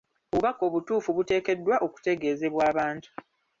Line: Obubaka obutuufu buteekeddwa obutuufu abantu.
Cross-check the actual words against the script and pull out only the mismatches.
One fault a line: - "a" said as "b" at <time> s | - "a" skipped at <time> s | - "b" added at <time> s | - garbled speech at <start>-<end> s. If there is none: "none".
- "obutuufu" said as "okutegeezebwa" at 1.9 s